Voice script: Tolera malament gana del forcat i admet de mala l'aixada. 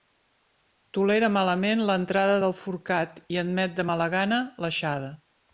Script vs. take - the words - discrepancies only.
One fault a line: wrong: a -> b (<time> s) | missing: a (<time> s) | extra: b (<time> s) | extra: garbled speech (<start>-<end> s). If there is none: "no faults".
wrong: gana -> l'entrada (1.9 s)
extra: gana (4.2 s)